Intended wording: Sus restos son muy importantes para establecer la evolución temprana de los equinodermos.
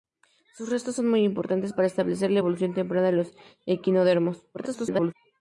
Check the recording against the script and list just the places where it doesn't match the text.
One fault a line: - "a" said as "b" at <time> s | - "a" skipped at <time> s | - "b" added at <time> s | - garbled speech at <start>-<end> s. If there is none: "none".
- garbled speech at 4.5-5.1 s